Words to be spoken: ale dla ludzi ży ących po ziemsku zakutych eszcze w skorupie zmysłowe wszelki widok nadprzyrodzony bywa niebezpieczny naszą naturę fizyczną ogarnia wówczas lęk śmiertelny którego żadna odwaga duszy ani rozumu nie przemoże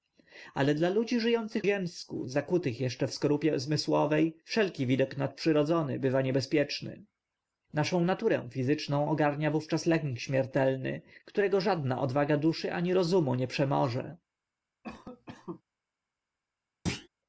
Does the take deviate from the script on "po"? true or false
true